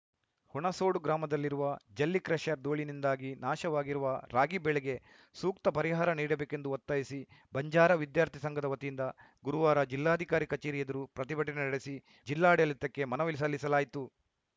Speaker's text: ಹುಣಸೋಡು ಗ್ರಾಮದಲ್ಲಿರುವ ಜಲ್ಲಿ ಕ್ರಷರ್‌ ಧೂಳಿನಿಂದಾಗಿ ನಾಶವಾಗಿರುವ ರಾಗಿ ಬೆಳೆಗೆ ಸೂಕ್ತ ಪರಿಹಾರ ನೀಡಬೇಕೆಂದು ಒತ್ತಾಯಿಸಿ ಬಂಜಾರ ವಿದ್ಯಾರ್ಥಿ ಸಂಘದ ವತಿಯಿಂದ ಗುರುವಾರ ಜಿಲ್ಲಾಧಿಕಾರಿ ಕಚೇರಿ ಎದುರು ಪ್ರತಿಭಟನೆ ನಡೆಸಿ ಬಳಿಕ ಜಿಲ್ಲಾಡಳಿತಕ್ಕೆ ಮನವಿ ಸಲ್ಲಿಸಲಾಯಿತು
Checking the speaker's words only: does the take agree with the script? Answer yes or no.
no